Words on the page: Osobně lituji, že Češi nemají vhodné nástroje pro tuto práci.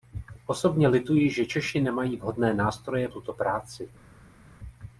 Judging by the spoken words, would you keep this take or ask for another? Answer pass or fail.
fail